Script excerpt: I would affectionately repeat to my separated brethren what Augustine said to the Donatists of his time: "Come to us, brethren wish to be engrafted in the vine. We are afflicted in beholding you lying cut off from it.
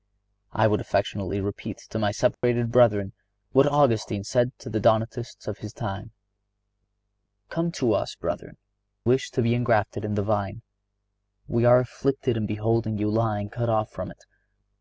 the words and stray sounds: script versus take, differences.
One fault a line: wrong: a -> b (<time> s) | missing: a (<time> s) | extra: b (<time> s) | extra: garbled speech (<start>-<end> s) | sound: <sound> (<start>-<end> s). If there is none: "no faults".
sound: dropout (2.3-2.4 s)